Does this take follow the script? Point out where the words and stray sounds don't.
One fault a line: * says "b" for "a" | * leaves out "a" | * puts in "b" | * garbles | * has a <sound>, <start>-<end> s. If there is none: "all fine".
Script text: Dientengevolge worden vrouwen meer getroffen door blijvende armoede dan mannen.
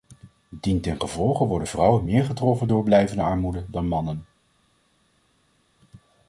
all fine